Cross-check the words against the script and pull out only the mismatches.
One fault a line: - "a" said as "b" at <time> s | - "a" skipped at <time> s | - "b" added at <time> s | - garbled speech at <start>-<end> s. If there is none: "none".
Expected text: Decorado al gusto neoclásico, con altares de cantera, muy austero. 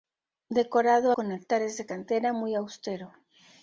- "al gusto neoclásico" skipped at 1.1 s